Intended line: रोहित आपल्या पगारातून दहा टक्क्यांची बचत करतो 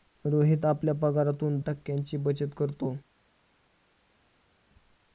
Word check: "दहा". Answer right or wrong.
wrong